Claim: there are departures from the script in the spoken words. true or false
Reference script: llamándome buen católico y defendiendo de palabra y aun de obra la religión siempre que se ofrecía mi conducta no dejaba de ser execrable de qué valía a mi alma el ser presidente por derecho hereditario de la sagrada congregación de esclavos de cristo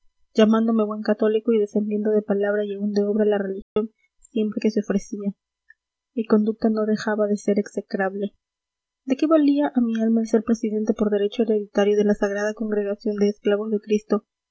false